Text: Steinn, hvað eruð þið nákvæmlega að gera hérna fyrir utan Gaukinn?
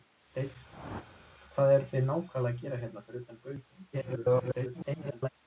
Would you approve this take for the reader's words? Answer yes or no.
no